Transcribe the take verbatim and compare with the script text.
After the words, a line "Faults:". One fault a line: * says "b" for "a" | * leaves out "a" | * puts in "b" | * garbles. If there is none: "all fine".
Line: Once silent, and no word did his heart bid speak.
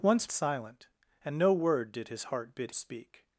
Once silent, and no word did his heart bid speak.
Faults:
all fine